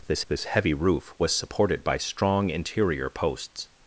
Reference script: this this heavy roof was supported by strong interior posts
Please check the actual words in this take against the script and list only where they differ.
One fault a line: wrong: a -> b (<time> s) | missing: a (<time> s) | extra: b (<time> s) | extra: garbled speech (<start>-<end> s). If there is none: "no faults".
no faults